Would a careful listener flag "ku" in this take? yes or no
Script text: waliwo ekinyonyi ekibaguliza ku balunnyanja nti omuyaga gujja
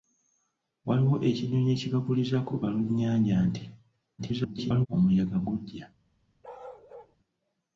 no